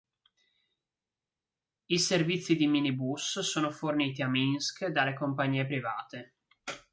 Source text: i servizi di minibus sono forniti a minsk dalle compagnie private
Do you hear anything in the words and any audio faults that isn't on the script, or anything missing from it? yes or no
no